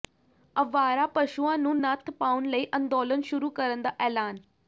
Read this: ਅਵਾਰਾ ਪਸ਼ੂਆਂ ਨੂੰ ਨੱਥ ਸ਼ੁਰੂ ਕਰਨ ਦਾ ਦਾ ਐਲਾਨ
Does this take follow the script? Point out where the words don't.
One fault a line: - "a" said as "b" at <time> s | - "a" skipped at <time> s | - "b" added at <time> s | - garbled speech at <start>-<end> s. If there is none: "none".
- "ਪਾਉਣ ਲਈ ਅੰਦੋਲਨ" added at 2.1 s
- "ਦਾ" skipped at 3.9 s